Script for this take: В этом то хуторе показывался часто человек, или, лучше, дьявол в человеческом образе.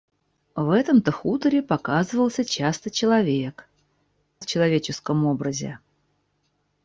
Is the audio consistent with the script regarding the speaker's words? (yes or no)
no